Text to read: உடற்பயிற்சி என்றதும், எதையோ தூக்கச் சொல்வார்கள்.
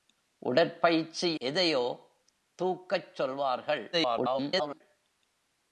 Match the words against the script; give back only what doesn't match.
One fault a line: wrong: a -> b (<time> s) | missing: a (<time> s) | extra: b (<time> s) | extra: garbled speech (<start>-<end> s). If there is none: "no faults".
missing: என்றதும் (1.4 s)
extra: garbled speech (3.9-4.8 s)